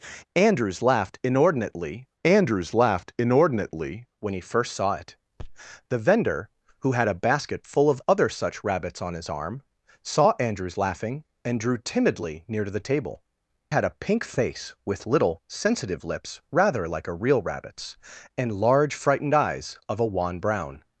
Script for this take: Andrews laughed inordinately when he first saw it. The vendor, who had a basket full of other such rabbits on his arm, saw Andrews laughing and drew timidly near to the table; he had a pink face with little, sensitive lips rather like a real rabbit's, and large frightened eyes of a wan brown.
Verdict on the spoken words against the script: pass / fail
fail